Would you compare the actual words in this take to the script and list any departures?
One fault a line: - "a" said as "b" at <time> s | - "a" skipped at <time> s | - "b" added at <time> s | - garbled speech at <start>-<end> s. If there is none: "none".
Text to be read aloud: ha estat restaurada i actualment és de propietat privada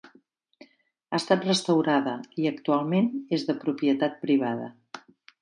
none